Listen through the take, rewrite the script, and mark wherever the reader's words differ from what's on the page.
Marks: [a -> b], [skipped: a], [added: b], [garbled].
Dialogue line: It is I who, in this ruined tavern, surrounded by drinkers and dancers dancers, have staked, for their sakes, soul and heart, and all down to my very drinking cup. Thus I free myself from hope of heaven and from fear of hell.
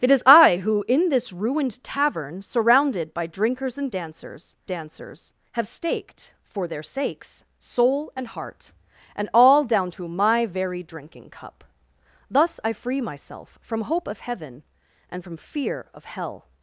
It is I who, in this ruined tavern, surrounded by drinkers and dancers dancers, have staked, for their sakes, soul and heart, and all down to my very drinking cup. Thus I free myself from hope of heaven and from fear of hell.